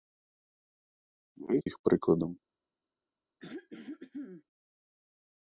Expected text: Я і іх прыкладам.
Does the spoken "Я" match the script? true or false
true